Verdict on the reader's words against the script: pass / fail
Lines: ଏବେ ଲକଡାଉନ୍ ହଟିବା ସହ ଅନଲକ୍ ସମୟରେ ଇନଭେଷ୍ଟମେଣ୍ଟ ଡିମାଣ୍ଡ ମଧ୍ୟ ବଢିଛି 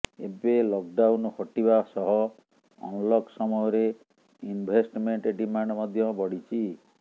pass